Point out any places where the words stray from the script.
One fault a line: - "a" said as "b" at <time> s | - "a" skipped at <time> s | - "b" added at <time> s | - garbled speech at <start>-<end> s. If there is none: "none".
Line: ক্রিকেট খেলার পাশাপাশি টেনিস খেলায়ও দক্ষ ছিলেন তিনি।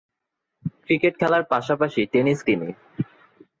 - "খেলায়ও দক্ষ ছিলেন" skipped at 2.4 s